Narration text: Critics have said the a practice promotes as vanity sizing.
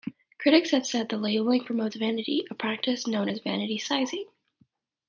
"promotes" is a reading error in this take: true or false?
true